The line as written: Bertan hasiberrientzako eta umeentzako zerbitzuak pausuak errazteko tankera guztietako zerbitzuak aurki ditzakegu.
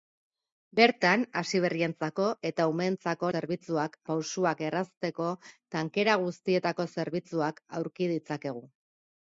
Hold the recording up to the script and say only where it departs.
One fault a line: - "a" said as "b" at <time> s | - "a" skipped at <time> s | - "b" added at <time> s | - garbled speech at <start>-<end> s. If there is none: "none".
none